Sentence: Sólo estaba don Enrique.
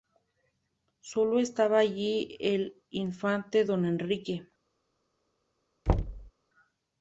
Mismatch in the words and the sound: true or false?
true